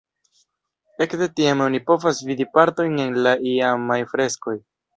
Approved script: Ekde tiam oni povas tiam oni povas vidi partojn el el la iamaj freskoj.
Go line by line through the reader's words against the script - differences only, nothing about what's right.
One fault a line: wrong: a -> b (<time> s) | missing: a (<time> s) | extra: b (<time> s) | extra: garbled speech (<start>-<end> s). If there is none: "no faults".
missing: tiam oni povas (2.2 s)
missing: el (3.2 s)